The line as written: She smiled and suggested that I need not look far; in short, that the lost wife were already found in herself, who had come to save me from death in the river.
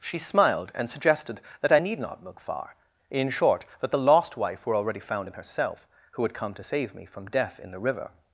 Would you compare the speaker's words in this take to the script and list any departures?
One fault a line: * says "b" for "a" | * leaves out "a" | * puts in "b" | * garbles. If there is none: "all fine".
all fine